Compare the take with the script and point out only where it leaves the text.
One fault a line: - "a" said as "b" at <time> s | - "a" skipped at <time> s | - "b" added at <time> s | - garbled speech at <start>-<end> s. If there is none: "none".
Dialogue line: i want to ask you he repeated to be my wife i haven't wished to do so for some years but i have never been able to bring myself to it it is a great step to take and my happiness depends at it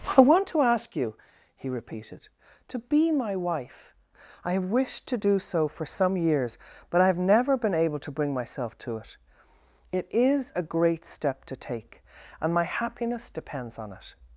- "haven't" said as "have" at 4.5 s
- "at" said as "on" at 13.8 s